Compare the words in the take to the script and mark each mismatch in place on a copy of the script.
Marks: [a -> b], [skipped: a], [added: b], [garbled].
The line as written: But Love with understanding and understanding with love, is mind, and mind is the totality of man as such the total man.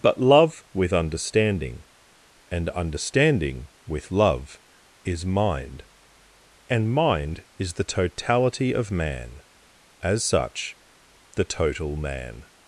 But Love with understanding and understanding with love, is mind, and mind is the totality of man as such the total man.